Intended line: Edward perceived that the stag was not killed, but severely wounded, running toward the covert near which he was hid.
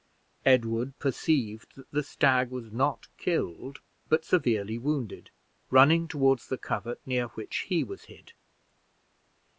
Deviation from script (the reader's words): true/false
false